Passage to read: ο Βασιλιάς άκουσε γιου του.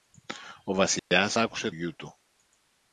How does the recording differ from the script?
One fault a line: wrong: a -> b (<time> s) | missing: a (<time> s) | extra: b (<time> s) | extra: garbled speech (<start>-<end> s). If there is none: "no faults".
no faults